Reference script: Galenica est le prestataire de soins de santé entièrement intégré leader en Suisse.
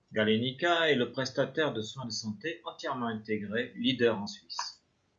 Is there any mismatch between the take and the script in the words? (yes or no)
no